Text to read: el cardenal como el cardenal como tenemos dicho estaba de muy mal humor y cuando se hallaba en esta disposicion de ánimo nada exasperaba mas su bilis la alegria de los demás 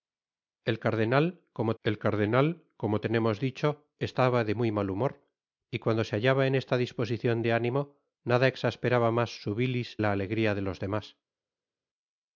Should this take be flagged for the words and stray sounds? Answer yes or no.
no